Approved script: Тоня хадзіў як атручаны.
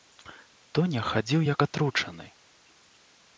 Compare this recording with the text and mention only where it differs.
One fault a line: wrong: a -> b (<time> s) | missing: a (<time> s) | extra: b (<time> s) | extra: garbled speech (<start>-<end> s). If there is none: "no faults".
no faults